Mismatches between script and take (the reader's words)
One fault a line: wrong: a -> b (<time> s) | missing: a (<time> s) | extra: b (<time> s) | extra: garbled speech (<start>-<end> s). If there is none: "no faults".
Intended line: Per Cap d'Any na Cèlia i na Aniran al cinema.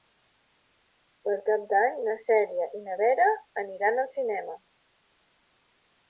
extra: Vera (3.0 s)